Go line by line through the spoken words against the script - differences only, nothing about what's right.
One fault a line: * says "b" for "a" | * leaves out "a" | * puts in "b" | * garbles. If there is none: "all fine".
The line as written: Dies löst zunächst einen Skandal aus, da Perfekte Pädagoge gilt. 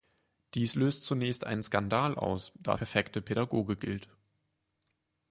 all fine